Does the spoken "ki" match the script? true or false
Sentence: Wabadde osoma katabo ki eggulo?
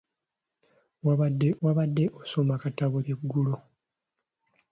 false